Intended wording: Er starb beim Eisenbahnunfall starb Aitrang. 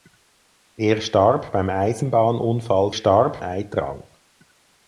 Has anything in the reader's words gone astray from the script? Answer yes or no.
no